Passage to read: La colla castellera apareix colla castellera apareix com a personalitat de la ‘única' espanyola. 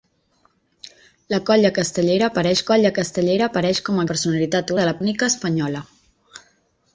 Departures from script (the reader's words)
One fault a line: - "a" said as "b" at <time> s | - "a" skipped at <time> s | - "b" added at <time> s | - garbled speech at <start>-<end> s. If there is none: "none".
none